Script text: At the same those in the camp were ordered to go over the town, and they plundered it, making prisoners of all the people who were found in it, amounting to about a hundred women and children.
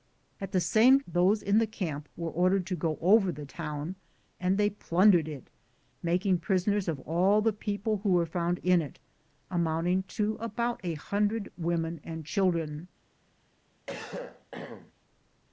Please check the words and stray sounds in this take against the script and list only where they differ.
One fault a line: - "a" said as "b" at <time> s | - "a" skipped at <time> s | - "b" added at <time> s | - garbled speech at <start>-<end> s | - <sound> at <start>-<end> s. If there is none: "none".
- cough at 13.9-14.9 s